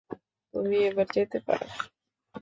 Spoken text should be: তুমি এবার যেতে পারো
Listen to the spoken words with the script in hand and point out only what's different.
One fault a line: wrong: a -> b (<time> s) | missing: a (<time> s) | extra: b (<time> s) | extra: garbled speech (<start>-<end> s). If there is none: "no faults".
no faults